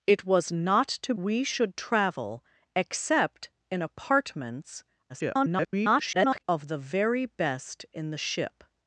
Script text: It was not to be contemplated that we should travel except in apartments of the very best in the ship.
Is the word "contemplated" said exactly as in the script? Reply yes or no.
no